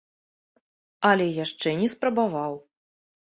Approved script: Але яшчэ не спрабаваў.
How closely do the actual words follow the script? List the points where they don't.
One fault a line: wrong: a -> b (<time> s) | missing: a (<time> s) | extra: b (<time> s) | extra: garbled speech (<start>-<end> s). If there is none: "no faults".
no faults